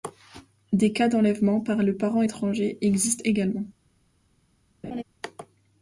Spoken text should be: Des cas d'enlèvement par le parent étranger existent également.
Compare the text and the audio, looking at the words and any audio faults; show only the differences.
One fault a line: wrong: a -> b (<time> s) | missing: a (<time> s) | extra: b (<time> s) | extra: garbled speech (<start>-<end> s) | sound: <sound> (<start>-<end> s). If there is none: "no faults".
sound: laugh (4.8-5.0 s)